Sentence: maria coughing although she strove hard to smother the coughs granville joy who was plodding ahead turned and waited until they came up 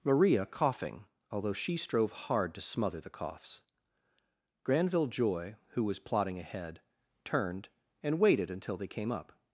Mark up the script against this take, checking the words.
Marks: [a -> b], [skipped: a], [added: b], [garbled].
maria coughing although she strove hard to smother the coughs granville joy who was plodding ahead turned and waited until they came up